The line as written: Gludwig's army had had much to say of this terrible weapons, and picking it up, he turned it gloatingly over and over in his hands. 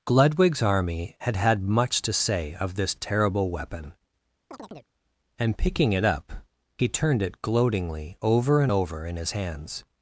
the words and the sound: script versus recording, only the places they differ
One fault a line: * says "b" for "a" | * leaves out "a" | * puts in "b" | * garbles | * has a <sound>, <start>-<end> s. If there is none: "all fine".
* says "weapon" for "weapons"
* has a chirp, 4.5-4.9 s